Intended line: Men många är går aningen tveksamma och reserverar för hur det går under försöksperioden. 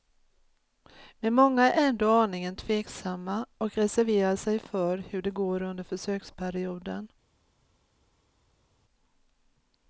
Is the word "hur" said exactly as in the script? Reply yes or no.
yes